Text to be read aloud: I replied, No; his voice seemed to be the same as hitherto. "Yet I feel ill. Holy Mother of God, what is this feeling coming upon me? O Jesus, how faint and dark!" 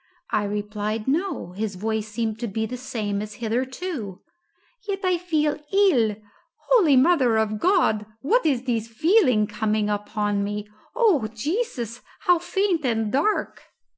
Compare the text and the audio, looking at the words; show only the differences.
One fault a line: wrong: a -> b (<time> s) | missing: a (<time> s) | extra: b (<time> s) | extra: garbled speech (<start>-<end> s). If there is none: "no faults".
no faults